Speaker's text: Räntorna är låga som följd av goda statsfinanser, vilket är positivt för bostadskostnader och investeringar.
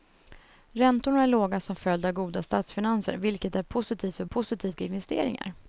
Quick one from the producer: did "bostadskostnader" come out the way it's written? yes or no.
no